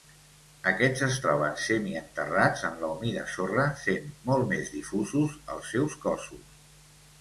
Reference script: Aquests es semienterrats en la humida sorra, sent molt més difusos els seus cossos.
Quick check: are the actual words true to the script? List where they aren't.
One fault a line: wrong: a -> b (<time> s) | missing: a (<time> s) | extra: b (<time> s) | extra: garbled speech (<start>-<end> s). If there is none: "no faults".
extra: troben (1.2 s)